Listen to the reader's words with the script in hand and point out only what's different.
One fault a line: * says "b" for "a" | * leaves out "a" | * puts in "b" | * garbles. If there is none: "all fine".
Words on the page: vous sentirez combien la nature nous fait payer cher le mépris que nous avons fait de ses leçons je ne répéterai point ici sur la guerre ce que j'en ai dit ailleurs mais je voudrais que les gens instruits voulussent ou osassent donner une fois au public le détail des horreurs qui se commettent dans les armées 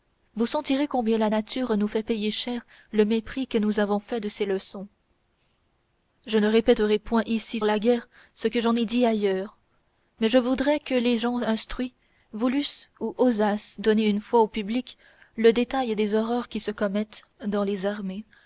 * leaves out "sur"